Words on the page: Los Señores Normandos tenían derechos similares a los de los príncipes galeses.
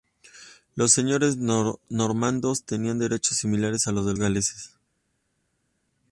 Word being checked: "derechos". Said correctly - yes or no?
yes